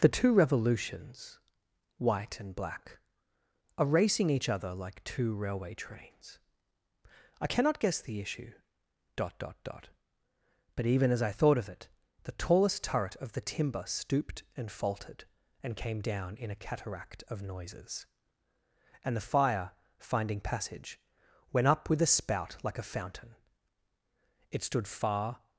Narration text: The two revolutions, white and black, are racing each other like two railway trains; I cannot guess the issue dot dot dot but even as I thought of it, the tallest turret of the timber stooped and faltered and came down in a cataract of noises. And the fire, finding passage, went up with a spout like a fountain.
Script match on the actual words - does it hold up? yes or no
no